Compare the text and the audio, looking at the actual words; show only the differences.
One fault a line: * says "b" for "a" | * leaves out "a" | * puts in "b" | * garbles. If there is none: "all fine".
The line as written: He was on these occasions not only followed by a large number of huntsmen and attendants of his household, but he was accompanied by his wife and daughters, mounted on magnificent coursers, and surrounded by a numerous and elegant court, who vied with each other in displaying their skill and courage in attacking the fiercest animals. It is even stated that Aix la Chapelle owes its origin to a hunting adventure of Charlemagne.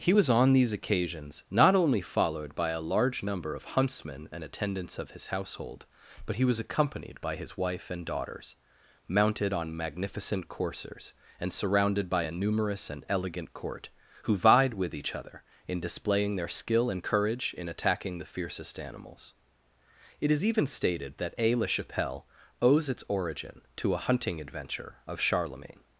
all fine